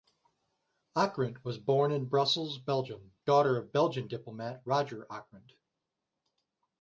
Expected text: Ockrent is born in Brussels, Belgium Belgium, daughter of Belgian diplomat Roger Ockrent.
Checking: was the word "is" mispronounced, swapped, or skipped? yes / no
yes